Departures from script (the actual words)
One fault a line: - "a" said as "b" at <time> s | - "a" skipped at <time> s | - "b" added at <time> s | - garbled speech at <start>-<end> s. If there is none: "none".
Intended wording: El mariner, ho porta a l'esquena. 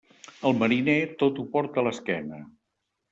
- "tot" added at 1.2 s